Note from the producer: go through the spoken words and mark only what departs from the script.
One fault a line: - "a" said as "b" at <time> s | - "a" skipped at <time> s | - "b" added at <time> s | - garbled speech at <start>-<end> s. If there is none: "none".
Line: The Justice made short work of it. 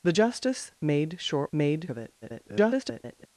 - "work" said as "made" at 1.5 s
- garbled speech at 2.2-3.3 s